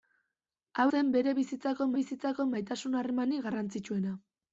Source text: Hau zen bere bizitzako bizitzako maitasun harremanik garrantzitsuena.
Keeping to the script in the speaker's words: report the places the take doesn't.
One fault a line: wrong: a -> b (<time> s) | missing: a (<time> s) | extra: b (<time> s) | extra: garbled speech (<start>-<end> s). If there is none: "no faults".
no faults